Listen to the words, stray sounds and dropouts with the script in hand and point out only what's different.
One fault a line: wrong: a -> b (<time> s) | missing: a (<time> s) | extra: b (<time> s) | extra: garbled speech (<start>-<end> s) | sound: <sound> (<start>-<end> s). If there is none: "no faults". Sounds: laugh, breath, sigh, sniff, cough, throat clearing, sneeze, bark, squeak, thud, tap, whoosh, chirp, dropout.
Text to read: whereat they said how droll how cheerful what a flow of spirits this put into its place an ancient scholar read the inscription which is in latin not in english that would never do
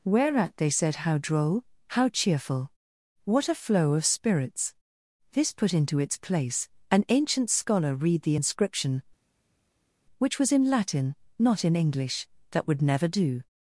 wrong: is -> was (10.4 s)